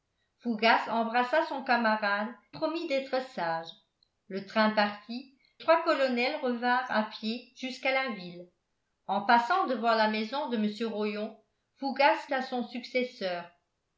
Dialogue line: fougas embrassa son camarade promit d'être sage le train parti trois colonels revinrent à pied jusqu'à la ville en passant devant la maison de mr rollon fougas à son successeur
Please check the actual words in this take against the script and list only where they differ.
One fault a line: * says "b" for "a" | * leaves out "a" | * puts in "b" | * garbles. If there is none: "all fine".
all fine